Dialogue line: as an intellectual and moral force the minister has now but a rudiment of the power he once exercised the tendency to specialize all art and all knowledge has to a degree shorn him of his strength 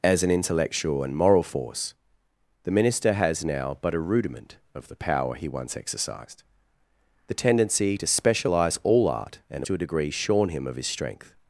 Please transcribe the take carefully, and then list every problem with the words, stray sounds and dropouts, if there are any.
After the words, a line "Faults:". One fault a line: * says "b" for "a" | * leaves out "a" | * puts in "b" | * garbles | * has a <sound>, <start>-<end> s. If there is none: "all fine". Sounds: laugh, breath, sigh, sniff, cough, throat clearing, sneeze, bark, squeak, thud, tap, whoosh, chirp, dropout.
as an intellectual and moral force the minister has now but a rudiment of the power he once exercised the tendency to specialize all art and to a degree shorn him of his strength
Faults:
* leaves out "all knowledge has"